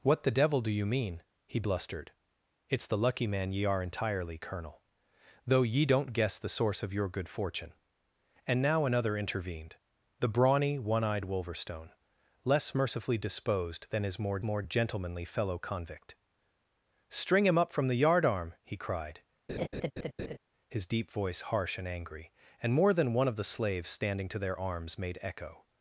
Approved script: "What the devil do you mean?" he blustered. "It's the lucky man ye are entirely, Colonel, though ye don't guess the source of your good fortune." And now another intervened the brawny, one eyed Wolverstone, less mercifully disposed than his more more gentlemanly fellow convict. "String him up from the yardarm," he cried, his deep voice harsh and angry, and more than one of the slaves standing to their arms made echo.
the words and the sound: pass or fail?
fail